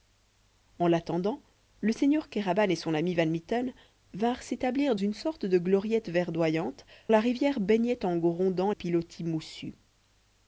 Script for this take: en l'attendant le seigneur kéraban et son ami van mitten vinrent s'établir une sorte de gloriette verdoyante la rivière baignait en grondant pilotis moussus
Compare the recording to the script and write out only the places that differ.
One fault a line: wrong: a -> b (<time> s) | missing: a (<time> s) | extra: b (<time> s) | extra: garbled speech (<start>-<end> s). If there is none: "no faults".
no faults